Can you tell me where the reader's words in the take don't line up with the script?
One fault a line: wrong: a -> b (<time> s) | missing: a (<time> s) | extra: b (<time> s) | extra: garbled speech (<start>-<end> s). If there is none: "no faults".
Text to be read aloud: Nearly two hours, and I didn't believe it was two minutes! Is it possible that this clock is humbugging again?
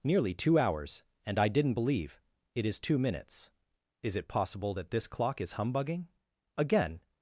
wrong: was -> is (2.7 s)